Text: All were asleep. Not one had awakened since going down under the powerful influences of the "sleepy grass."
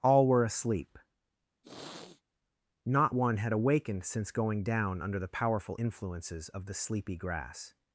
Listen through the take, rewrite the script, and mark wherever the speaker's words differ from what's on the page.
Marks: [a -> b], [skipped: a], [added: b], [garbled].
All were asleep. Not one had awakened since going down under the powerful influences of the "sleepy grass."